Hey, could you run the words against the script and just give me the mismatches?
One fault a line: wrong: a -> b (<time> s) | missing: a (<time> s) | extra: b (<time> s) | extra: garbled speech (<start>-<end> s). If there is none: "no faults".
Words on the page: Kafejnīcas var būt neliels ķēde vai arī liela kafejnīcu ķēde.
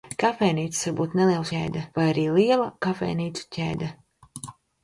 no faults